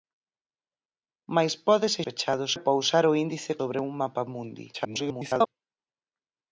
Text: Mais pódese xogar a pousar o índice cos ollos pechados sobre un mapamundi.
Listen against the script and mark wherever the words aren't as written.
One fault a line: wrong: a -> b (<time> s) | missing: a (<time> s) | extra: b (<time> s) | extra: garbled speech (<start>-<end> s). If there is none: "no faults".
wrong: xogar -> pechados (2.1 s)
missing: cos ollos pechados (3.5 s)
extra: garbled speech (4.7-5.5 s)